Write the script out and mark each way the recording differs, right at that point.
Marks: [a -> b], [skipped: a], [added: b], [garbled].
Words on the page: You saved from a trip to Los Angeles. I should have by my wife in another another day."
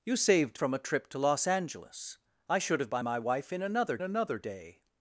You saved from a trip to Los Angeles. I should have by my wife in another another day."